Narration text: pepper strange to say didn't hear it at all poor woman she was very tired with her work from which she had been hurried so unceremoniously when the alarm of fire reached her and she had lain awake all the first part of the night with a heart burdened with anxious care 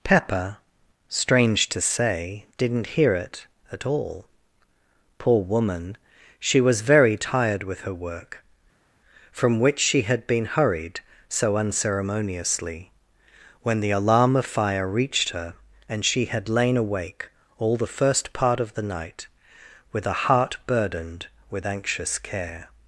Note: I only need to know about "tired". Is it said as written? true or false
true